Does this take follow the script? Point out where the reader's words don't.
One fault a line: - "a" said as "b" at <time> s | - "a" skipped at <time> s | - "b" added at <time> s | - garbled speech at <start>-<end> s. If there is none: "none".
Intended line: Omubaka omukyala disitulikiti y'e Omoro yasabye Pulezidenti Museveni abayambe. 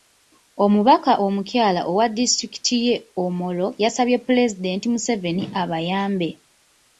- "owa" added at 1.9 s